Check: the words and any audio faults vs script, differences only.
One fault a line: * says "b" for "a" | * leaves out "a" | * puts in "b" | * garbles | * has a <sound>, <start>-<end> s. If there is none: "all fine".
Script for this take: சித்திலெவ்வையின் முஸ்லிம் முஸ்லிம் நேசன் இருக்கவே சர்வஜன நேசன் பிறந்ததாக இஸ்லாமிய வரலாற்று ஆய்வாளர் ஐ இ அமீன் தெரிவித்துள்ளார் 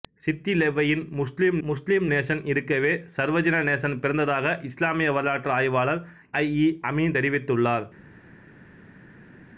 all fine